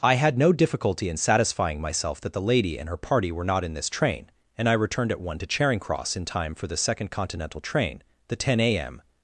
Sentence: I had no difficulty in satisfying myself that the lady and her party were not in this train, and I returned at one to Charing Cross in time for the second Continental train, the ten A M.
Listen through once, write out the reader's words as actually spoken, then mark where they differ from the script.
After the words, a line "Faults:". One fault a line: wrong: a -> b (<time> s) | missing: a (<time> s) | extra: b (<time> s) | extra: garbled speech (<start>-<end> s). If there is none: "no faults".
I had no difficulty in satisfying myself that the lady and her party were not in this train, and I returned at one to Charing Cross in time for the second Continental train, the ten A M.
Faults:
no faults